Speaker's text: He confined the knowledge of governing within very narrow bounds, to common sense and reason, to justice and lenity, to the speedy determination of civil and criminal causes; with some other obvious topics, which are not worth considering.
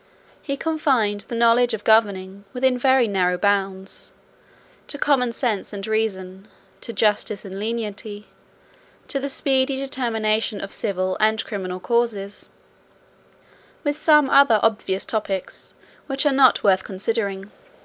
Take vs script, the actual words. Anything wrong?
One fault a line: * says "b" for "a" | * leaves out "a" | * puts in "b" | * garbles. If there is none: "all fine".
all fine